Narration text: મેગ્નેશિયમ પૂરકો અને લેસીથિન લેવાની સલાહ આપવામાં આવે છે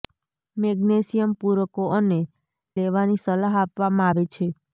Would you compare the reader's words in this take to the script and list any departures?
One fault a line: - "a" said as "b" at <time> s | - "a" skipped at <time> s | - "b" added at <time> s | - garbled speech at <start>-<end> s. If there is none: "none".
- "લેસીથિન" skipped at 2.2 s